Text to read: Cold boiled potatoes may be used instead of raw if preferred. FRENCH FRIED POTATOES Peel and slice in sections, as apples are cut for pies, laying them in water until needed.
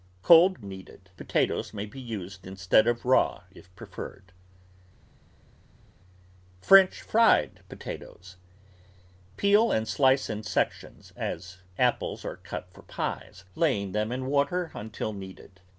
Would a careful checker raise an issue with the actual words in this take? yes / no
yes